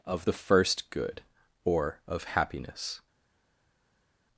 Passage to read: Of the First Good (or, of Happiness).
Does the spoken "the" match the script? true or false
true